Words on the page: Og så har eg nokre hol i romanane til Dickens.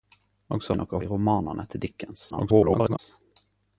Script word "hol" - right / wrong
wrong